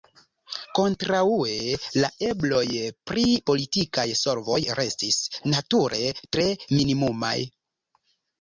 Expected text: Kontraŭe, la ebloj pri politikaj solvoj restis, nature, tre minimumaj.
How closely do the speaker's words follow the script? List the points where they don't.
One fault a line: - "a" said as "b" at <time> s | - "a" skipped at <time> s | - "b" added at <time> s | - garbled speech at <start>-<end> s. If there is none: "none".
none